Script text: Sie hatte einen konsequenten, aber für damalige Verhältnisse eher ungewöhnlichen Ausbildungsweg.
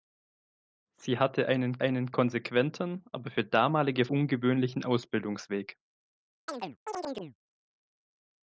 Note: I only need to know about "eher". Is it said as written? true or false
false